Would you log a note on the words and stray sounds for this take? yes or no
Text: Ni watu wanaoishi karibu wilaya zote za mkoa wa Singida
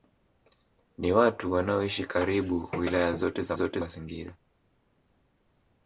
yes